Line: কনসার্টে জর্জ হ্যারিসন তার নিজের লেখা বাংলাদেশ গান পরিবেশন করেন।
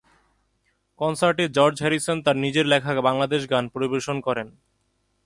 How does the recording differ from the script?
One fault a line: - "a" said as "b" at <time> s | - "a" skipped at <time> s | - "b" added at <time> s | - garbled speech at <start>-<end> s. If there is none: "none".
none